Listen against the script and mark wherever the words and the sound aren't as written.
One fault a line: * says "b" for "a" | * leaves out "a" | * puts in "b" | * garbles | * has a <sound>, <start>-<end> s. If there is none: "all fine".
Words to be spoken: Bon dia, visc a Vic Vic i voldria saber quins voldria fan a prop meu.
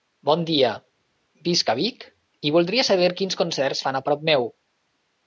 * leaves out "Vic"
* says "concerts" for "voldria"